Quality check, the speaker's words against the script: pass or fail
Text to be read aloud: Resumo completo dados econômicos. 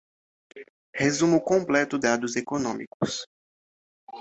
pass